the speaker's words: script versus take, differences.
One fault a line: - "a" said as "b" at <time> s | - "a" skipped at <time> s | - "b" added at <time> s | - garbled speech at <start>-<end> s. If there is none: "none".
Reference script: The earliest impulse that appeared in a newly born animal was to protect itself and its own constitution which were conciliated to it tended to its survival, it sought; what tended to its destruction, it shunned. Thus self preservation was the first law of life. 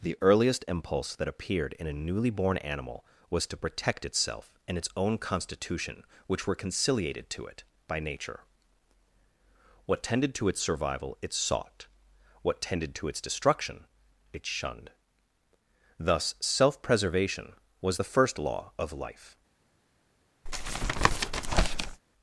- "by nature What" added at 7.9 s